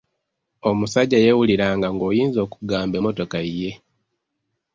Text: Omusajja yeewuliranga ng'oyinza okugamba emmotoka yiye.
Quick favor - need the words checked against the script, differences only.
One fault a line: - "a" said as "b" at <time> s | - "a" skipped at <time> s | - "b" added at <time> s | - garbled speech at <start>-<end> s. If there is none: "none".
none